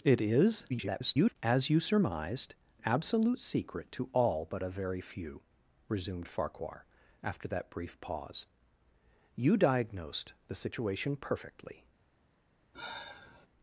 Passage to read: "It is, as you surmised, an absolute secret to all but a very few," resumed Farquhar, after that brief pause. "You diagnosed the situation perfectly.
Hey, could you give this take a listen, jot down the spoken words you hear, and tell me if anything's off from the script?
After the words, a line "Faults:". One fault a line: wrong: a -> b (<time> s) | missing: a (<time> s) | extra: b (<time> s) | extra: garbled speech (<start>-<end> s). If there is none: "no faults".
"It is, [garbled] as you surmised, absolute secret to all but a very few," resumed Farquhar, after that brief pause. "You diagnosed the situation perfectly.
Faults:
extra: garbled speech (0.7-1.4 s)
missing: an (2.5 s)